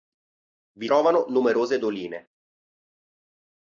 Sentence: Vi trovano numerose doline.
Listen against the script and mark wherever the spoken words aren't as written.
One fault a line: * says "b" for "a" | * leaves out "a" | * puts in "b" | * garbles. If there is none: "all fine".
all fine